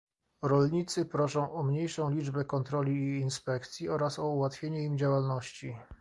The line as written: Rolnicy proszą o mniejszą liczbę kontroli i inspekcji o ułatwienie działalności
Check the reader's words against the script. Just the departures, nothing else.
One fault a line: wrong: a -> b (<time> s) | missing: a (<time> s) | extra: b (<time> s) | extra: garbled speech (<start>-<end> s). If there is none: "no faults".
extra: oraz (3.9 s)
extra: im (4.8 s)